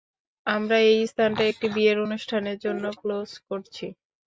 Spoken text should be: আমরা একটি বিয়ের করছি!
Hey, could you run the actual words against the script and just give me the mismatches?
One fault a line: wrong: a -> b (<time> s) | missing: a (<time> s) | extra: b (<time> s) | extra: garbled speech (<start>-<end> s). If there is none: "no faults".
extra: এই স্থানটা (0.9 s)
extra: অনুষ্ঠানের জন্য ক্লোজ (2.0 s)